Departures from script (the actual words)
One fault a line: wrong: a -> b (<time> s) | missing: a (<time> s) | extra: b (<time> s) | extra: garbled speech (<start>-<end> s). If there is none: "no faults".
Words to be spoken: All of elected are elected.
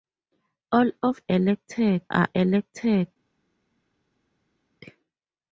no faults